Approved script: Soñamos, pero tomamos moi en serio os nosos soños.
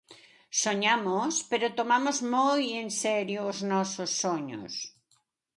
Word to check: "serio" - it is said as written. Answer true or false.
true